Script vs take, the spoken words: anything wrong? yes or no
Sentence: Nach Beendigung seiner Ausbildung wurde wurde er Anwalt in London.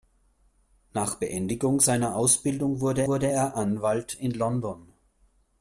no